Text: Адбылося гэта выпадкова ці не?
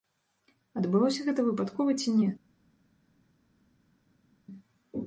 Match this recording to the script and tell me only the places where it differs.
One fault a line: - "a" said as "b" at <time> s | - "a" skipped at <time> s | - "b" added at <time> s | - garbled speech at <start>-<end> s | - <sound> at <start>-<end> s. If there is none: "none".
none